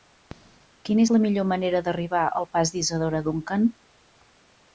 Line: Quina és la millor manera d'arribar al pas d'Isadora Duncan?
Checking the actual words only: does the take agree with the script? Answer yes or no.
yes